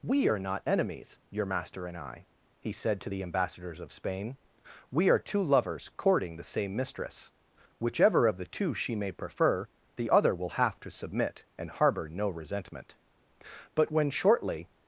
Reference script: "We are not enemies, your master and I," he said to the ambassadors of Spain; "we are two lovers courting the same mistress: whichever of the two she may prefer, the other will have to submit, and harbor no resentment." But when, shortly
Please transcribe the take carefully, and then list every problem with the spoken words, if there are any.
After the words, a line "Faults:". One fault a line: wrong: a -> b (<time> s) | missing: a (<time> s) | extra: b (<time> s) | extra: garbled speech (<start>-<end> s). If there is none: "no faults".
"We are not enemies, your master and I," he said to the ambassadors of Spain; "we are two lovers courting the same mistress: whichever of the two she may prefer, the other will have to submit, and harbor no resentment." But when, shortly
Faults:
no faults